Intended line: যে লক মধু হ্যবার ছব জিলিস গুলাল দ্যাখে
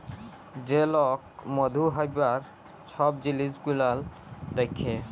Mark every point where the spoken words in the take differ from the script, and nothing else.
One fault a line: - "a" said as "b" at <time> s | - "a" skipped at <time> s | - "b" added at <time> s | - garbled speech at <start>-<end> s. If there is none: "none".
none